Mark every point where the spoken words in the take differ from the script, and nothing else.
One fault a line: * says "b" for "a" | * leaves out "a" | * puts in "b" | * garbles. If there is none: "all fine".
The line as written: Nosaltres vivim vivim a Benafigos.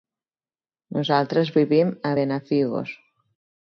* leaves out "vivim"